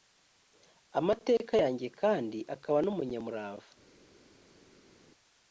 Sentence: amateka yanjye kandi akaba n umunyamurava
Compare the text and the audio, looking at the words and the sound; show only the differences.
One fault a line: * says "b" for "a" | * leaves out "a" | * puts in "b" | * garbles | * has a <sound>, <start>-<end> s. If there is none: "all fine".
all fine